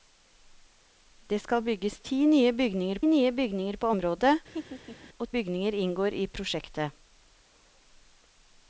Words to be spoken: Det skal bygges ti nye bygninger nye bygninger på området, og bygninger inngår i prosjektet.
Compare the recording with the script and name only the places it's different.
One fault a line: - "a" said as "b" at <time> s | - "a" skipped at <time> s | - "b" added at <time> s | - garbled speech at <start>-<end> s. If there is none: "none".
none